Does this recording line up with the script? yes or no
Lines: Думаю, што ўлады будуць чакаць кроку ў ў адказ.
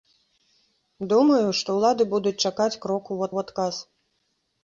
yes